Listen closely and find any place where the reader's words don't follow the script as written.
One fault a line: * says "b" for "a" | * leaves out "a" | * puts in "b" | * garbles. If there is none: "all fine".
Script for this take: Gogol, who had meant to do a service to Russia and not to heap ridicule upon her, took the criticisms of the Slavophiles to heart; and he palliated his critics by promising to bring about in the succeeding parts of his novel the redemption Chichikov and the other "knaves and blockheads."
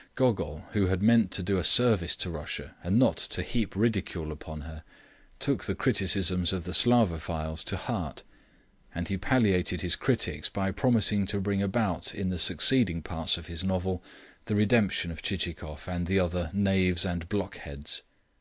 * puts in "of"